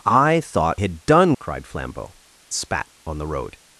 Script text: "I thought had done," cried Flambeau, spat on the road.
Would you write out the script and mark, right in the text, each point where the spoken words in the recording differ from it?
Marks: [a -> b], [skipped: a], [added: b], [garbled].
"I thought had done," cried Flambeau, spat on the road.